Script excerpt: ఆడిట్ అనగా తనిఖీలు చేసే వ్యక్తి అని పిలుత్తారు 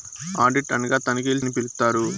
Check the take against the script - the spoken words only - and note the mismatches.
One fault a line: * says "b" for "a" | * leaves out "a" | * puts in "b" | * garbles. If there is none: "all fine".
* leaves out "చేసే వ్యక్తి"